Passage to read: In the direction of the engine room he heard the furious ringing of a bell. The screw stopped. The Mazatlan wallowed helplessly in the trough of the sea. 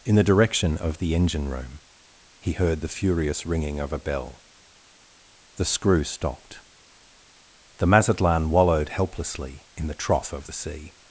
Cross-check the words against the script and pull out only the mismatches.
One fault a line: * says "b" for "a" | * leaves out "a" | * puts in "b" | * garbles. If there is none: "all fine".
all fine